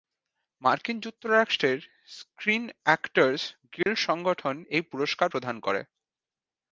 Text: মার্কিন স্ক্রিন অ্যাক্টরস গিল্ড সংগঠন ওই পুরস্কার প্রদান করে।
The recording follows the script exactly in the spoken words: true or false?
false